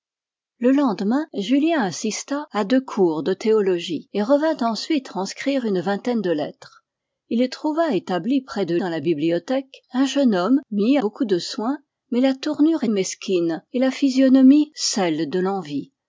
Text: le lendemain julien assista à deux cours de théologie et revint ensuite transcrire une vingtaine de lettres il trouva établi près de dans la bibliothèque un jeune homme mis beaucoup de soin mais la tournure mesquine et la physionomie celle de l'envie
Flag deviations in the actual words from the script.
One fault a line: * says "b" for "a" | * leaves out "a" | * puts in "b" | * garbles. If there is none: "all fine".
all fine